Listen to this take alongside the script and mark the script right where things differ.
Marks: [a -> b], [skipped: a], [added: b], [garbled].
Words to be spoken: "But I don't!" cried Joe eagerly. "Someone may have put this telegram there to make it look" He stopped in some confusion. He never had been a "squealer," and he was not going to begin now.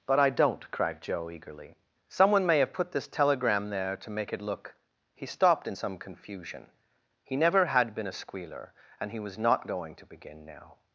"But I don't!" cried Joe eagerly. "Someone may have put this telegram there to make it look" He stopped in some confusion. He never had been a "squealer," and he was not going to begin now.